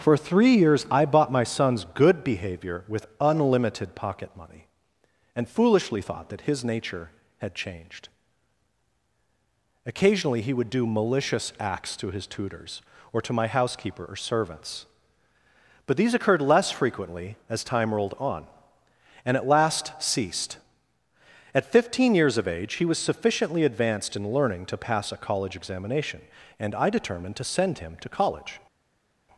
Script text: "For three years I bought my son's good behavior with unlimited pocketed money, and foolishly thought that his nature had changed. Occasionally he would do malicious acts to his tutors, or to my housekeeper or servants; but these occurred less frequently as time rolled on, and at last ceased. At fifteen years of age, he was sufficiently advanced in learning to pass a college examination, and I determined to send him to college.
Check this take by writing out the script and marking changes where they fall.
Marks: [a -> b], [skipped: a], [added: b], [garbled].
"For three years I bought my son's good behavior with unlimited [pocketed -> pocket] money, and foolishly thought that his nature had changed. Occasionally he would do malicious acts to his tutors, or to my housekeeper or servants; but these occurred less frequently as time rolled on, and at last ceased. At fifteen years of age, he was sufficiently advanced in learning to pass a college examination, and I determined to send him to college.